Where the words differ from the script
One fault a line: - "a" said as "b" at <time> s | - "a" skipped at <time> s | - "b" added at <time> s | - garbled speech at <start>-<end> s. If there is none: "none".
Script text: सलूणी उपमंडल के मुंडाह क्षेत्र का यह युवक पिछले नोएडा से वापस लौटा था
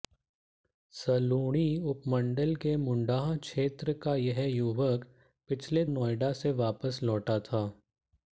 none